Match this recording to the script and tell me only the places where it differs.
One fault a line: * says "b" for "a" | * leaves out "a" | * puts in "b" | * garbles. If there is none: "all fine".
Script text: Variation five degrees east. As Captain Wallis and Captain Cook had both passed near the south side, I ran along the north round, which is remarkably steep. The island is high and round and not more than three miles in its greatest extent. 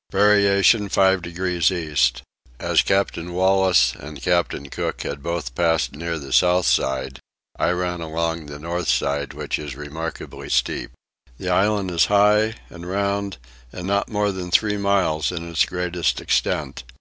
* says "side" for "round"